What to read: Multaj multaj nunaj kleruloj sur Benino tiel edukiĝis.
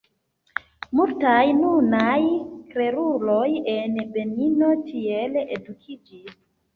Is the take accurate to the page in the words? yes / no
no